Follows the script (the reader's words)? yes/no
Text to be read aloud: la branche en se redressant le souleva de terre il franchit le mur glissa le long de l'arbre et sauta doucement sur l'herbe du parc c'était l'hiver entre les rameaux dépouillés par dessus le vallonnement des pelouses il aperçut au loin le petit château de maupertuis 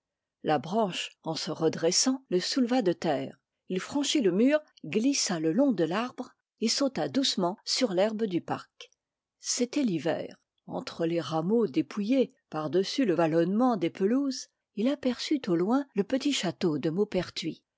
yes